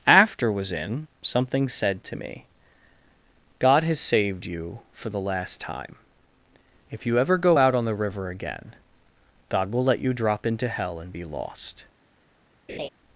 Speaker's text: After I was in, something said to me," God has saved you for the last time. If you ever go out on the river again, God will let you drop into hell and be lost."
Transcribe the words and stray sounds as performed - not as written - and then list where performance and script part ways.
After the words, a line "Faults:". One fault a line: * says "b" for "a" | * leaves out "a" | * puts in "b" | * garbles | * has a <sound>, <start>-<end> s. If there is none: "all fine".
After was in, something said to me," God has saved you for the last time. If you ever go out on the river again, God will let you drop into hell and be lost."
Faults:
* leaves out "I"
* has a laugh, 12.7-12.9 s